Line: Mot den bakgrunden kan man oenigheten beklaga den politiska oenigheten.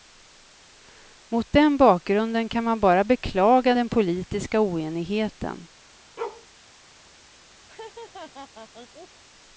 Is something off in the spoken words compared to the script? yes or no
yes